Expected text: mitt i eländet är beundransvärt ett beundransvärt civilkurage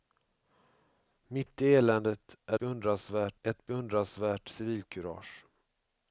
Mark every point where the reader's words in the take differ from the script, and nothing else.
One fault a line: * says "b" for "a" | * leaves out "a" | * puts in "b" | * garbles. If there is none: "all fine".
all fine